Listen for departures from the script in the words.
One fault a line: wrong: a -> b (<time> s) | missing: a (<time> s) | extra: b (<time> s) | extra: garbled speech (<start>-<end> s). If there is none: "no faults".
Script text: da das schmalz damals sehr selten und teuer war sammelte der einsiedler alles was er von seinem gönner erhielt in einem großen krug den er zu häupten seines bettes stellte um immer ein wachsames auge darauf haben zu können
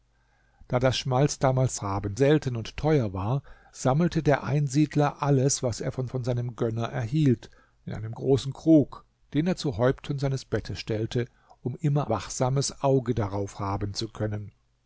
wrong: sehr -> haben (1.8 s)
extra: von (6.1 s)
missing: ein (12.1 s)